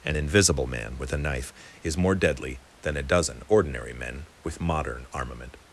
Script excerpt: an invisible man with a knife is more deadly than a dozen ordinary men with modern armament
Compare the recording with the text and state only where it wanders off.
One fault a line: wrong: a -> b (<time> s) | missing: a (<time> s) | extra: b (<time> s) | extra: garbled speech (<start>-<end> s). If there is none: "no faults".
no faults